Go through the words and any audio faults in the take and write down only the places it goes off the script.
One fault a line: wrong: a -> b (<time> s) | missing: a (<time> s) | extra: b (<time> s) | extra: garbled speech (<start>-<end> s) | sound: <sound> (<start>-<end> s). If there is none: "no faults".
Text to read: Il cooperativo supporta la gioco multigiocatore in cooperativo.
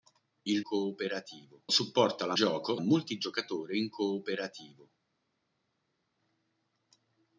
no faults